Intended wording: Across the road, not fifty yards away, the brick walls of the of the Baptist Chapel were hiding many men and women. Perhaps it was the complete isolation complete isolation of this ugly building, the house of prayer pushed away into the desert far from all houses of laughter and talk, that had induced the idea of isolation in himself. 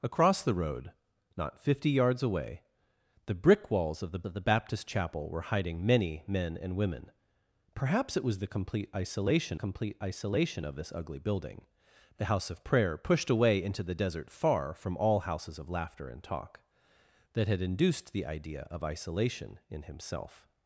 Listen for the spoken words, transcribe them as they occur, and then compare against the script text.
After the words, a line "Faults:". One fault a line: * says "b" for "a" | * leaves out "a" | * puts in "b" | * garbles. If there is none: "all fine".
Across the road, not fifty yards away, the brick walls of the of the Baptist Chapel were hiding many men and women. Perhaps it was the complete isolation complete isolation of this ugly building, the house of prayer pushed away into the desert far from all houses of laughter and talk, that had induced the idea of isolation in himself.
Faults:
all fine